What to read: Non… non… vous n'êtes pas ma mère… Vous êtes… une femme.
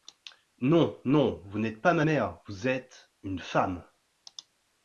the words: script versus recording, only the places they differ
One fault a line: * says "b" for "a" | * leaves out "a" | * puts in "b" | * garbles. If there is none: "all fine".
all fine